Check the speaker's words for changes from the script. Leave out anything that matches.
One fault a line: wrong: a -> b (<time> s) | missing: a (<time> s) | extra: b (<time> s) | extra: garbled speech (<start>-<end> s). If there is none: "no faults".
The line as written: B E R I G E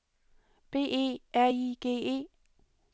no faults